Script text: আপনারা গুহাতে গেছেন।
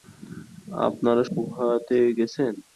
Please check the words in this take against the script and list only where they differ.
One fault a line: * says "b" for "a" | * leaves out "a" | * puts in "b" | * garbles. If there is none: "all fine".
all fine